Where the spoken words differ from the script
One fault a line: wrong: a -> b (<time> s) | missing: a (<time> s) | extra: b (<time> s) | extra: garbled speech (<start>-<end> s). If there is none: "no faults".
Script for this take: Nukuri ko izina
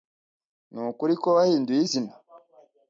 extra: wahinduye (1.4 s)